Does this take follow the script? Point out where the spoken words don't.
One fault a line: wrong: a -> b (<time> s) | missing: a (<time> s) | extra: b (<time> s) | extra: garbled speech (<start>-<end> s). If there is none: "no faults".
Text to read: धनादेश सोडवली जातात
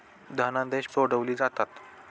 no faults